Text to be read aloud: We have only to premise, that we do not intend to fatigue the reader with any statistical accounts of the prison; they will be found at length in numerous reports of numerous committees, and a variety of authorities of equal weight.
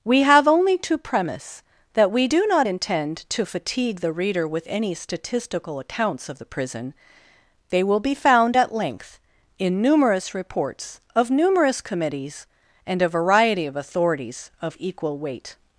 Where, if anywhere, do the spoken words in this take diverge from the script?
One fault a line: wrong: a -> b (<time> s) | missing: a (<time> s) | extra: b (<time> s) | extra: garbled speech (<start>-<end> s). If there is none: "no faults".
no faults